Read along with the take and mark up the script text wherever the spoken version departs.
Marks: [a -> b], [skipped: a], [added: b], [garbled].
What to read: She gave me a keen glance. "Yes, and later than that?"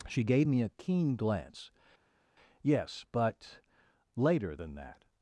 She gave me a keen glance. "Yes, [and -> but] later than that?"